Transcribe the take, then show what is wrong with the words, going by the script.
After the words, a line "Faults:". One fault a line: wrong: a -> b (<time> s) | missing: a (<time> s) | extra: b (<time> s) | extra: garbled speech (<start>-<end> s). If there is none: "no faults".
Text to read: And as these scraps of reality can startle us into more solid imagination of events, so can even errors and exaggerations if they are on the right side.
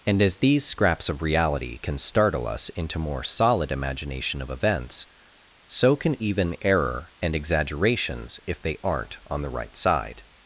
And as these scraps of reality can startle us into more solid imagination of events, so can even error and exaggerations if they aren't on the right side.
Faults:
wrong: errors -> error (6.6 s)
wrong: are -> aren't (8.8 s)